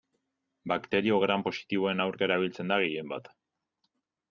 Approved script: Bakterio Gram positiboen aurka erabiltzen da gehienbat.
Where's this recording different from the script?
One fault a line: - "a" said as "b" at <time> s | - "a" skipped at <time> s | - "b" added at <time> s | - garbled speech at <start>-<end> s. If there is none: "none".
none